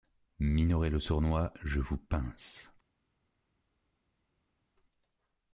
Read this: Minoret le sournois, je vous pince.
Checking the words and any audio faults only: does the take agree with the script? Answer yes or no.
yes